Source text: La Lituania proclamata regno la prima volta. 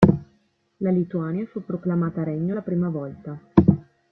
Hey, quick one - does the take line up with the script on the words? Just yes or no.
no